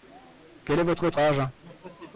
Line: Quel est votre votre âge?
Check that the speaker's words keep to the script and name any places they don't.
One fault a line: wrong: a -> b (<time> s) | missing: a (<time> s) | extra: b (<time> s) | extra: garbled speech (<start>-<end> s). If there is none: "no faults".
no faults